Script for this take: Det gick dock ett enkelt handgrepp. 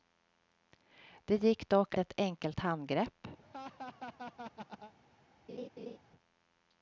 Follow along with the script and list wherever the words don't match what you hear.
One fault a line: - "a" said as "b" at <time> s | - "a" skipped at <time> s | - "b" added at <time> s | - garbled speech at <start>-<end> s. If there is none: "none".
none